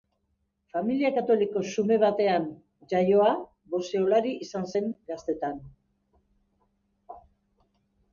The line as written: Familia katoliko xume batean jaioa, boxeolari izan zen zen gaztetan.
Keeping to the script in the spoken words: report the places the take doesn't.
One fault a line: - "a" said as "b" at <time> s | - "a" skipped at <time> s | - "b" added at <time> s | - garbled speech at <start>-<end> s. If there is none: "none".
- "zen" skipped at 4.9 s